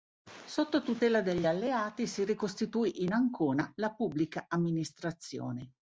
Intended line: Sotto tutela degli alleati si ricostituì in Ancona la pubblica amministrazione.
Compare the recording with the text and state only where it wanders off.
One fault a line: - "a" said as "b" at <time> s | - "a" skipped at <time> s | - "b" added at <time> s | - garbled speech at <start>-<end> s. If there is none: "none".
none